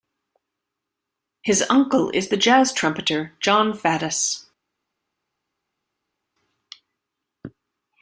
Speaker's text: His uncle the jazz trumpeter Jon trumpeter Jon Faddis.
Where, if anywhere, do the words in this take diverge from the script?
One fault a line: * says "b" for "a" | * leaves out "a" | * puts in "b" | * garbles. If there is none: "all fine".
* puts in "is"
* leaves out "trumpeter Jon"